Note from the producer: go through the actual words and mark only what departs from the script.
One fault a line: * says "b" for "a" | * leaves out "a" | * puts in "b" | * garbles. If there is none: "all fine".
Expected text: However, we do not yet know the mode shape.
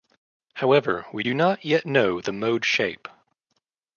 all fine